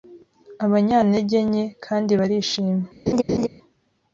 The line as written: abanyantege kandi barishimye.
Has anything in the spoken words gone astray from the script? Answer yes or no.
yes